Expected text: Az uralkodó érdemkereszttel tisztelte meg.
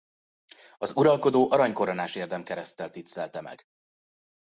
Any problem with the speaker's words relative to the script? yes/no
yes